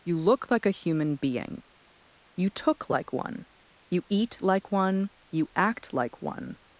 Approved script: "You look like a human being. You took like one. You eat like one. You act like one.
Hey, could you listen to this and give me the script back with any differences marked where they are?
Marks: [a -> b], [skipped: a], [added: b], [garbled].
"You look like a human being. You took like one. You eat like one. You act like one.